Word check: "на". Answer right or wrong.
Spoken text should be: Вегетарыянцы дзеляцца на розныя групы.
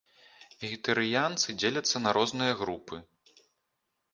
right